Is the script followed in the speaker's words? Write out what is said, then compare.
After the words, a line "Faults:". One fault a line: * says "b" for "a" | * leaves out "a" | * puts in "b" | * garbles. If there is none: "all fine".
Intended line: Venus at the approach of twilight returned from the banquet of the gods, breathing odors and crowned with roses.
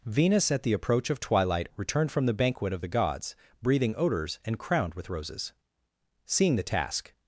Venus at the approach of twilight returned from the banquet of the gods, breathing odors and crowned with roses. Seeing the task
Faults:
* puts in "Seeing the task"